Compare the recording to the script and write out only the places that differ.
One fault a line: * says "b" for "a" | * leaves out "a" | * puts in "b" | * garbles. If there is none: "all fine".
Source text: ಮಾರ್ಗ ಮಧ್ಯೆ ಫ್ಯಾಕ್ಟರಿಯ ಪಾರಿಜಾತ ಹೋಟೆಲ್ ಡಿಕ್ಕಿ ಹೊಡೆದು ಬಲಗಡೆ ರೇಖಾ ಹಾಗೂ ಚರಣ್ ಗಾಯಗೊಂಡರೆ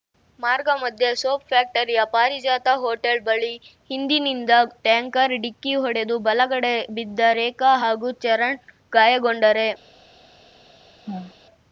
* puts in "ಸೋಪ್"
* puts in "ಬಳಿ ಹಿಂದಿನಿಂದ ಟ್ಯಾಂಕರ್"
* puts in "ಬಿದ್ದ"